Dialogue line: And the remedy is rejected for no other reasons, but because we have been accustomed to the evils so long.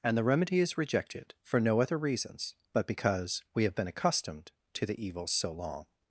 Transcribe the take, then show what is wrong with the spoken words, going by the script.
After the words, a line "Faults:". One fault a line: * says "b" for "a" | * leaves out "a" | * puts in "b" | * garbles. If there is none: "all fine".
And the remedy is rejected for no other reasons, but because we have been accustomed to the evils so long.
Faults:
all fine